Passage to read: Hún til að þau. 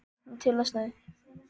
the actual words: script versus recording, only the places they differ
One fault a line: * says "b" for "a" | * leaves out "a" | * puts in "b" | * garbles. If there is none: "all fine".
all fine